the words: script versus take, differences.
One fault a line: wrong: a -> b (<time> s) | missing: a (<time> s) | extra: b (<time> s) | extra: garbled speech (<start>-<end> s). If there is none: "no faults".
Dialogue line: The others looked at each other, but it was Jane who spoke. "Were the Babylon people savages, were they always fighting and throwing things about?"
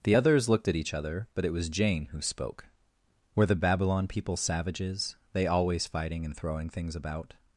missing: were (5.2 s)